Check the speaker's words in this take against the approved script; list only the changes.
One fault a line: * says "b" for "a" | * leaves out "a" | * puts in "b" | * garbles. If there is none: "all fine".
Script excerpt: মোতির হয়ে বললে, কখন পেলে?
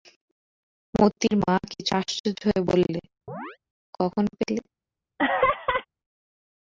* puts in "মা কিছু আশ্চর্য"